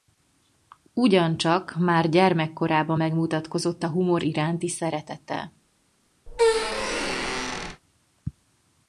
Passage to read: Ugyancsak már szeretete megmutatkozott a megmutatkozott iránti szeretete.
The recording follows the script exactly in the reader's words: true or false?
false